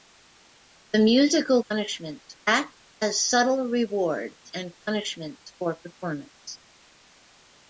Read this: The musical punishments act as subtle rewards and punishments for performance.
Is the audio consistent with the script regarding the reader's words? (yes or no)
yes